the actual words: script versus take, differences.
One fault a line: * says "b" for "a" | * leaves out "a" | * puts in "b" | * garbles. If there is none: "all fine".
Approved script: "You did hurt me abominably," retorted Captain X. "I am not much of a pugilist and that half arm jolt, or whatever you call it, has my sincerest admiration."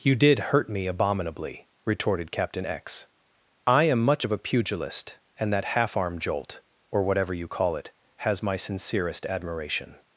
* leaves out "not"